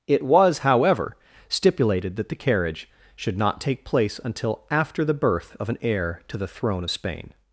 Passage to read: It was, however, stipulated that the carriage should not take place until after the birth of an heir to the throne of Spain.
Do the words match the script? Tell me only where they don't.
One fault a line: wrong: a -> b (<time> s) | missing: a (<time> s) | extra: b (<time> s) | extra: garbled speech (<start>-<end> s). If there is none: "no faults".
no faults